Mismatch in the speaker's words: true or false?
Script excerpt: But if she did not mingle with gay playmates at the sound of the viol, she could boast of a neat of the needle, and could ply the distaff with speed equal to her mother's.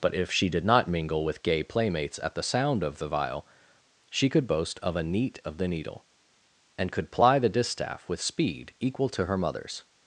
false